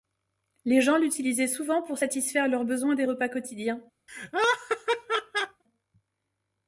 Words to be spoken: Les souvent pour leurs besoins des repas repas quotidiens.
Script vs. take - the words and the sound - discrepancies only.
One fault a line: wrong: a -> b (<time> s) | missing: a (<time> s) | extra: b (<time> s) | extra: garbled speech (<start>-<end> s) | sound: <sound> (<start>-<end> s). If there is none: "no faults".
extra: gens l'utilisaient (0.8 s)
extra: satisfaire (2.0 s)
missing: repas (3.3 s)
sound: laugh (4.1-5.6 s)